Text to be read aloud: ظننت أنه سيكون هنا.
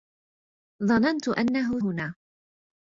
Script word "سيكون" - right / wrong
wrong